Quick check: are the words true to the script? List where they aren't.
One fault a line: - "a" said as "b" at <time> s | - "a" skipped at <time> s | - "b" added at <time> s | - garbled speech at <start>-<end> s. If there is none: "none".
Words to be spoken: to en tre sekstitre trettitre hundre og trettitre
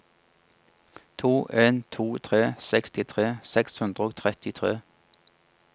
- "to" added at 1.9 s
- "trettitre" said as "seks" at 3.4 s